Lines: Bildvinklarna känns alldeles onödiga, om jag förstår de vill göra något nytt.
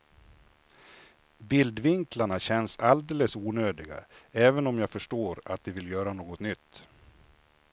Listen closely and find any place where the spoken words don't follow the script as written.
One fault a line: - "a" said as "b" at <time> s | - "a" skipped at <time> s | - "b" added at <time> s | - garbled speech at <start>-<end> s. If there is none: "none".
- "även" added at 4.3 s
- "att" added at 5.5 s